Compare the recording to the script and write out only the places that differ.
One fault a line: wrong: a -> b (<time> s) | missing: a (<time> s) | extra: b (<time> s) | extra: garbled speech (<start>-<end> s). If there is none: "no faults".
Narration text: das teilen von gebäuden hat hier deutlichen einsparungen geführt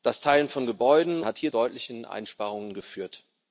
no faults